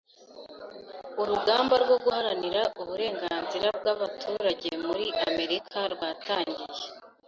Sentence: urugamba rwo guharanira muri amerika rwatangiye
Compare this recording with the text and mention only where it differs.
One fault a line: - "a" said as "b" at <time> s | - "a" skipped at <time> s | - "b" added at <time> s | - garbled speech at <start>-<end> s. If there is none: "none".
- "uburenganzira bw'abaturage" added at 2.8 s